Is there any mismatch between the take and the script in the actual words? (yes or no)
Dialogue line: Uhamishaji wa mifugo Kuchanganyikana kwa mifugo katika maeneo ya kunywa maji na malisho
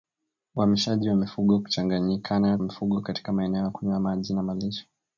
yes